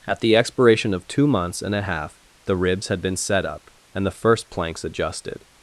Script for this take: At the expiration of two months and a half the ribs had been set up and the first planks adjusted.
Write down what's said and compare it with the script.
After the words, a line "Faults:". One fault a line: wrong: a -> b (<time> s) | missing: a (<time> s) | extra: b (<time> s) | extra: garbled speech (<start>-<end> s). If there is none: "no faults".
At the expiration of two months and a half the ribs had been set up and the first planks adjusted.
Faults:
no faults